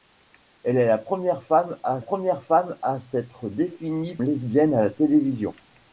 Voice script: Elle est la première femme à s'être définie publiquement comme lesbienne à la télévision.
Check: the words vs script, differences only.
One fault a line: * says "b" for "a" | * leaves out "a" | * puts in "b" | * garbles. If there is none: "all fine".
* puts in "première femme à"
* leaves out "publiquement comme"